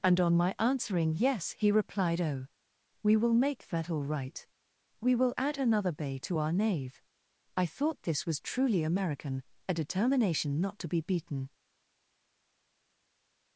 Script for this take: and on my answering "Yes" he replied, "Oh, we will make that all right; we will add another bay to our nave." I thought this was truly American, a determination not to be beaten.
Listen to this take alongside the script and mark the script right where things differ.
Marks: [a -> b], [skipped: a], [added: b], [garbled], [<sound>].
and on my answering "Yes" he replied, "Oh, we will make that all right; we will add another bay to our nave." I thought this was truly American, a determination not to be beaten.